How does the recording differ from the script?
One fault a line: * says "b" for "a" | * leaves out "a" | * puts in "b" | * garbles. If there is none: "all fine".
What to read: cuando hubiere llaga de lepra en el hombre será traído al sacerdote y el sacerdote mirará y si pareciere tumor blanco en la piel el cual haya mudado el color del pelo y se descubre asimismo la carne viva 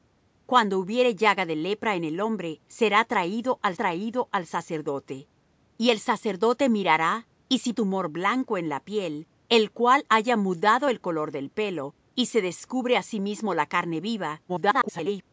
* puts in "traído al"
* leaves out "pareciere"
* garbles